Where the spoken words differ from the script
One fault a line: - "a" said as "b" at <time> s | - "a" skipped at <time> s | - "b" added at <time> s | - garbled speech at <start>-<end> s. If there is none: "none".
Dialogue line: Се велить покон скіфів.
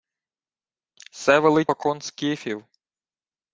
none